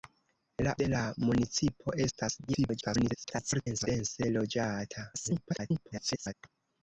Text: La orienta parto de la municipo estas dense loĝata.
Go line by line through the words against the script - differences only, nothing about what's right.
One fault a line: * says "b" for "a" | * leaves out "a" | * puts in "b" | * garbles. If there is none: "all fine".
* leaves out "orienta parto"
* garbles
* garbles